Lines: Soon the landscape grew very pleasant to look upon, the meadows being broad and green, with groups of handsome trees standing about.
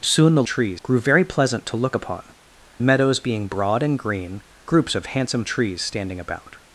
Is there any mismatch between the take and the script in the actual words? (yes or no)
yes